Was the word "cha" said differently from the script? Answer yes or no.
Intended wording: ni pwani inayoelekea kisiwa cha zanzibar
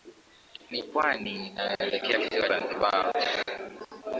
yes